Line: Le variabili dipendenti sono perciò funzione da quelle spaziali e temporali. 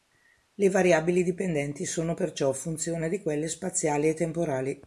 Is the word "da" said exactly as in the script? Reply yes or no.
no